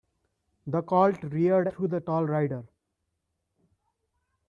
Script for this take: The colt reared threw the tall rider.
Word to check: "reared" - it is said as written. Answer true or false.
true